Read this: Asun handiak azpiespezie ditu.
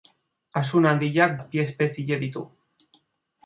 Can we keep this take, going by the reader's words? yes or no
yes